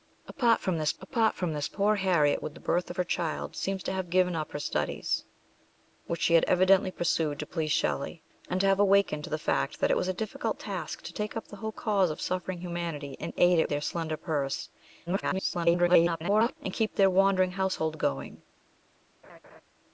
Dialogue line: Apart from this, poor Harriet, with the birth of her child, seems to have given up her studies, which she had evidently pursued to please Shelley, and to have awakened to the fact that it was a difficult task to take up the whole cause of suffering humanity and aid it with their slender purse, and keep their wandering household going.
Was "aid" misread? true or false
false